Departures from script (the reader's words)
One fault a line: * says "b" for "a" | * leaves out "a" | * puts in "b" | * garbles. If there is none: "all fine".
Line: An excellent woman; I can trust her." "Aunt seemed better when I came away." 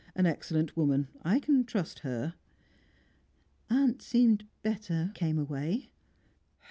* leaves out "when I"